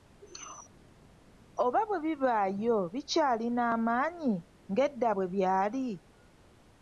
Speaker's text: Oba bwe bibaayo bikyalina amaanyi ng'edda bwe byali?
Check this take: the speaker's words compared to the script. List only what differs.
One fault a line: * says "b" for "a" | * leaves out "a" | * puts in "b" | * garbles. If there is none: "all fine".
all fine